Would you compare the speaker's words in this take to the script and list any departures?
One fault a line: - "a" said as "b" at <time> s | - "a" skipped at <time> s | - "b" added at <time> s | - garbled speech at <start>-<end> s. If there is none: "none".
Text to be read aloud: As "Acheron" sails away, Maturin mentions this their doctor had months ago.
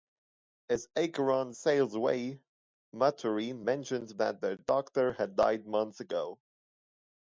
- "this" said as "that" at 4.2 s
- "died" added at 5.4 s